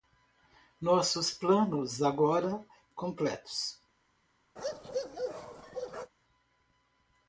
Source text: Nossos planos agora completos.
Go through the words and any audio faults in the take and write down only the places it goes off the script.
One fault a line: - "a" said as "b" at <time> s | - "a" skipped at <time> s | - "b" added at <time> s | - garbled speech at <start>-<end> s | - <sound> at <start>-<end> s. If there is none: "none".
- bark at 4.6-6.1 s